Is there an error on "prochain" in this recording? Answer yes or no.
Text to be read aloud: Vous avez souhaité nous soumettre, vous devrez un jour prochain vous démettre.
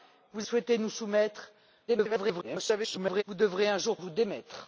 yes